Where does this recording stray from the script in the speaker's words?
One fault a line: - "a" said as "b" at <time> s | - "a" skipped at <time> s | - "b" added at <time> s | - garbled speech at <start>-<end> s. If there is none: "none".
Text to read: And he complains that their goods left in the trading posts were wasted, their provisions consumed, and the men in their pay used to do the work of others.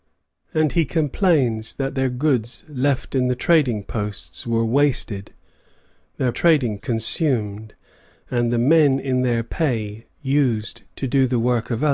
- "provisions" said as "trading" at 6.3 s